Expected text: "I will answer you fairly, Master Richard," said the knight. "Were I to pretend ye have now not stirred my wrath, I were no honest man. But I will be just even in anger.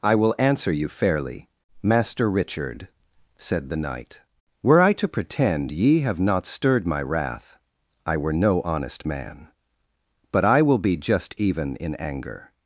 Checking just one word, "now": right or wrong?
wrong